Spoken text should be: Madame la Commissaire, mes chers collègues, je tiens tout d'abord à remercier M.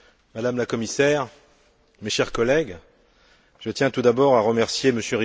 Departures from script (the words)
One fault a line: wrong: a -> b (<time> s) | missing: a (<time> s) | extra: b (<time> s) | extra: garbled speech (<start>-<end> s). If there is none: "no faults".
no faults